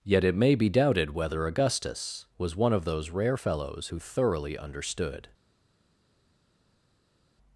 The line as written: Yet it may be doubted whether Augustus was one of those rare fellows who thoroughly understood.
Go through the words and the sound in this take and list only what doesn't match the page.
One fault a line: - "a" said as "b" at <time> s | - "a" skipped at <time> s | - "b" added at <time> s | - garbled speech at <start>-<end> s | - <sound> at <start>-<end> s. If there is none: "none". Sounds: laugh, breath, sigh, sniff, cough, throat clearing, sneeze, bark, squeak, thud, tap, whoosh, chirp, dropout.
none